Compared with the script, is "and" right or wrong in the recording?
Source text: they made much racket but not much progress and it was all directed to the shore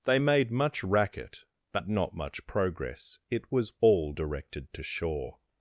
wrong